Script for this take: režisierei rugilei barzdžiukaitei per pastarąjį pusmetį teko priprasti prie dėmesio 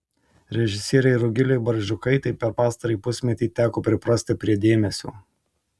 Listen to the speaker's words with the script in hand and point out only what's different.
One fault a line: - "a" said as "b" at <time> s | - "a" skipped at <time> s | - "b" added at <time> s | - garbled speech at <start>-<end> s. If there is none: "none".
none